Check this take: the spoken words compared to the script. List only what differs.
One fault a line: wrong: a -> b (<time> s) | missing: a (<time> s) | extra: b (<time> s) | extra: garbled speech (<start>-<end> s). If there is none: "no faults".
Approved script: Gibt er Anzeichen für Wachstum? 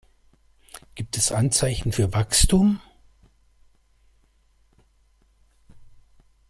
wrong: er -> es (1.2 s)